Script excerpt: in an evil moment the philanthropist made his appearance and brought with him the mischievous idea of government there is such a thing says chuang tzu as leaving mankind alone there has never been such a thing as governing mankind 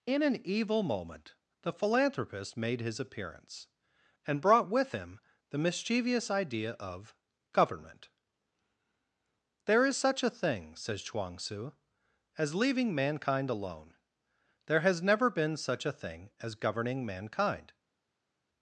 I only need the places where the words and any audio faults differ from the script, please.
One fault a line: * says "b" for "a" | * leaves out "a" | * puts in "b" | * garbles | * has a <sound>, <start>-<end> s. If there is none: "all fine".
all fine